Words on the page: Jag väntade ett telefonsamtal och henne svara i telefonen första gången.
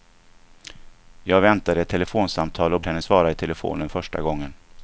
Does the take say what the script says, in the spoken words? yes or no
yes